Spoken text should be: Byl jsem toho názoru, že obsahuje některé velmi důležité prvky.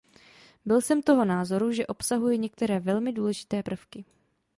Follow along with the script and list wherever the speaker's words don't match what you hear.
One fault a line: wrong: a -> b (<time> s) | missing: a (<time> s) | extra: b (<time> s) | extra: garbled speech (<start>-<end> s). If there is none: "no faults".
no faults